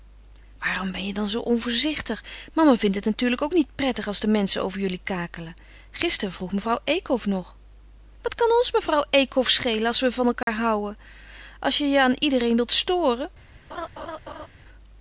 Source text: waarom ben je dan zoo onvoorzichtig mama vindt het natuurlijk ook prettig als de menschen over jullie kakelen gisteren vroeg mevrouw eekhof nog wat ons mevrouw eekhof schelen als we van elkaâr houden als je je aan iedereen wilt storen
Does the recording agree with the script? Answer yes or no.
no